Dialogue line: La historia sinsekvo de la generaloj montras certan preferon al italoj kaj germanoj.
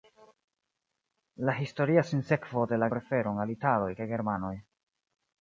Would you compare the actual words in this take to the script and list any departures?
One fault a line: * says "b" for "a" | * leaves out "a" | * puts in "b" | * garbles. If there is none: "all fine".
* leaves out "generaloj montras certan"